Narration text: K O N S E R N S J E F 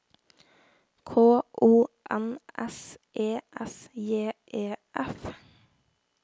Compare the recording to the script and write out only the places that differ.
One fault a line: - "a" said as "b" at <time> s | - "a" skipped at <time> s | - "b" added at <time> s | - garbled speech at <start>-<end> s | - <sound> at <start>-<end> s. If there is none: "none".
- "R N" skipped at 3.4 s